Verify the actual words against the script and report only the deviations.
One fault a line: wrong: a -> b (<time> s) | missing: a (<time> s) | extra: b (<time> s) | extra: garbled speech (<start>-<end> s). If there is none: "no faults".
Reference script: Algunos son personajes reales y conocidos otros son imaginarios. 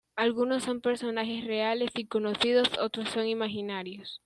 no faults